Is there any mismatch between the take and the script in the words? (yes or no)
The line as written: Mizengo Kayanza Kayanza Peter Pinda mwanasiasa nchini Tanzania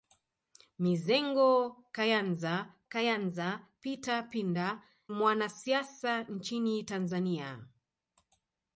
no